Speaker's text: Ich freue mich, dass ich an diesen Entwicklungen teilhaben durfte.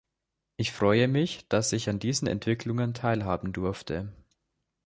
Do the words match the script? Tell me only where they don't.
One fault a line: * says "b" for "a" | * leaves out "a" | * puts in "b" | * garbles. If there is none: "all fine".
all fine